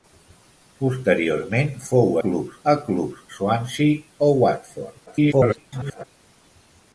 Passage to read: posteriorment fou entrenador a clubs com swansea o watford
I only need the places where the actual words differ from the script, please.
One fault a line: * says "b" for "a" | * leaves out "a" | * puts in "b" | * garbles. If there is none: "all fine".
* says "clubs" for "entrenador"
* leaves out "com"
* garbles